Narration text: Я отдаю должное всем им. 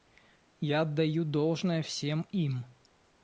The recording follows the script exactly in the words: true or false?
true